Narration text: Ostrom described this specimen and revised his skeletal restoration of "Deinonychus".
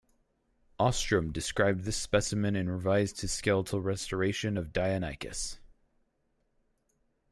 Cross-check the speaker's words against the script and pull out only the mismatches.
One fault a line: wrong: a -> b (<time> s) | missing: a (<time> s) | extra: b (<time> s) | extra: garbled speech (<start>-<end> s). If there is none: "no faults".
no faults